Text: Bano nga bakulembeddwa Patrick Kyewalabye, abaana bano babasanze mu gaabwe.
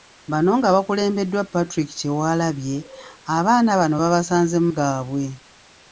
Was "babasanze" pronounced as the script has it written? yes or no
yes